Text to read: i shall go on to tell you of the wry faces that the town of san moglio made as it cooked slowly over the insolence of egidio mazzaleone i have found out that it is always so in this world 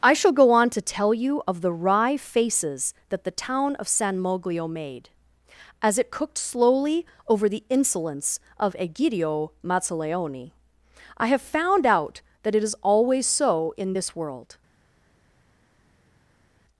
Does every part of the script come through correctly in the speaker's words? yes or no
yes